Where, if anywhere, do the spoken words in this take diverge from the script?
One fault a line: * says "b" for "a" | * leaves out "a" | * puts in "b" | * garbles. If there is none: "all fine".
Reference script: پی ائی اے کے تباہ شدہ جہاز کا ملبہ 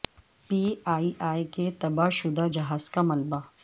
all fine